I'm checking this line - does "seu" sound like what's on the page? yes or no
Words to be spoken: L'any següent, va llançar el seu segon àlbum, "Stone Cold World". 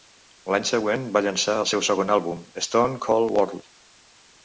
yes